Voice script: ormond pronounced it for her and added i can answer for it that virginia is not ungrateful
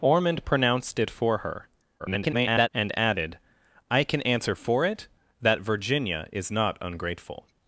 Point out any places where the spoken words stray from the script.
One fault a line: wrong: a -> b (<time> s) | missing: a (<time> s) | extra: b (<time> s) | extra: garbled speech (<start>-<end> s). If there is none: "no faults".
extra: garbled speech (2.0-2.7 s)